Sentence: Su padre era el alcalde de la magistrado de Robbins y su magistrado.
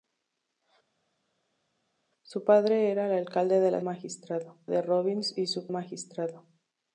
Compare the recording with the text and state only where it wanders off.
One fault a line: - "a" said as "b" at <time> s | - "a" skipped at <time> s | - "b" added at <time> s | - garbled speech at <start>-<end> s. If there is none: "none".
none